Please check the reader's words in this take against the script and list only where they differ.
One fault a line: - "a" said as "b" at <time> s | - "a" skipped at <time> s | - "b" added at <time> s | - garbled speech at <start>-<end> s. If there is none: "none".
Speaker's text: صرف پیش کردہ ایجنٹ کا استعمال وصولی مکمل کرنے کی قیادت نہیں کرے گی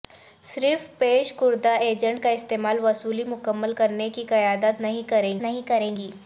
- "نہیں کرے" added at 5.4 s